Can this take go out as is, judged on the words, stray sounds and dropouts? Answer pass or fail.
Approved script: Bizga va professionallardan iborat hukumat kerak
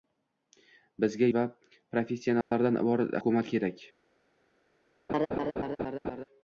fail